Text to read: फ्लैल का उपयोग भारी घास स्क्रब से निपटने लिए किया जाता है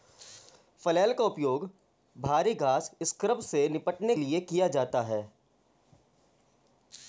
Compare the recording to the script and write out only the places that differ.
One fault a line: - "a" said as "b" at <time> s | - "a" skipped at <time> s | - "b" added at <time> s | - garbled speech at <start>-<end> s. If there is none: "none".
none